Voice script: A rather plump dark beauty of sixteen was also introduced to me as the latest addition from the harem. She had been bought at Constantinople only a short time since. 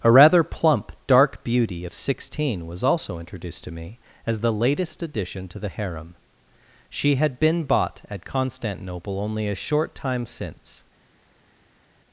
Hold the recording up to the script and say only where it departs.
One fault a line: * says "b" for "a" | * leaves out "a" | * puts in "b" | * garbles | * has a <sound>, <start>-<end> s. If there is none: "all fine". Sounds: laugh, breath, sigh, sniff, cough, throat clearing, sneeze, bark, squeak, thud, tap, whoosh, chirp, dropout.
* says "to" for "from"